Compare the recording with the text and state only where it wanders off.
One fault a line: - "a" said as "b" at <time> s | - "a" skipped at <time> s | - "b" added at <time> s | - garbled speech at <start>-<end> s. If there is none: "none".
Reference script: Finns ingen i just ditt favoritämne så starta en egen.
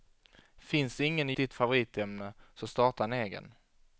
- "just" skipped at 1.3 s